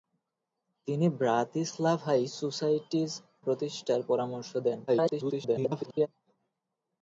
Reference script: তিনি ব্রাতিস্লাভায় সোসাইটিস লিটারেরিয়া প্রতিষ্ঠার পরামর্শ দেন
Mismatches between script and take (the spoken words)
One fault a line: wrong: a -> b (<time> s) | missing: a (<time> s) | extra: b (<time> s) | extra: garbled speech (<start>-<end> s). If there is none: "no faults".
missing: লিটারেরিয়া (3.1 s)
extra: garbled speech (4.9-6.1 s)